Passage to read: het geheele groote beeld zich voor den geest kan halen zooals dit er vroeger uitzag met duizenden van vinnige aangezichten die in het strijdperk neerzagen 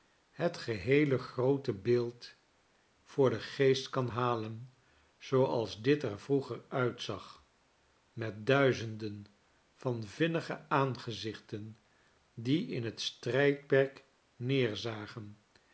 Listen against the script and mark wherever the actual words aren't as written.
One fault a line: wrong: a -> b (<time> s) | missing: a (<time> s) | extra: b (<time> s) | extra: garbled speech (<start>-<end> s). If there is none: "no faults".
missing: zich (2.3 s)